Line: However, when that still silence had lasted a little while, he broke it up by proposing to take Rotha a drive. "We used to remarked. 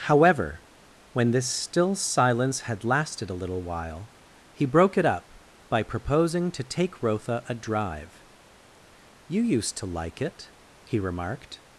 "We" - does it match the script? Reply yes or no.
no